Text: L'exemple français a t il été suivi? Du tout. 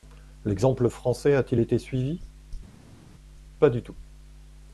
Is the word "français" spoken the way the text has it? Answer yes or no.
yes